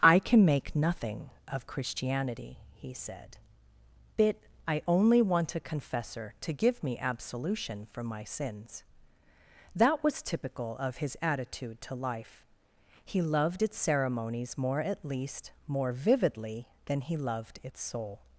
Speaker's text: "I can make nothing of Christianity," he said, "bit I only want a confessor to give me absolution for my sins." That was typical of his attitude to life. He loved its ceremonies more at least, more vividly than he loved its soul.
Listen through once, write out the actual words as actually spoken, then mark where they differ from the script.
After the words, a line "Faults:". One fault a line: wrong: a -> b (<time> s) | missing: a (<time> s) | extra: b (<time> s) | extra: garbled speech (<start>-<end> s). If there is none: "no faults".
"I can make nothing of Christianity," he said, "bit I only want a confessor to give me absolution for my sins." That was typical of his attitude to life. He loved its ceremonies more at least, more vividly than he loved its soul.
Faults:
no faults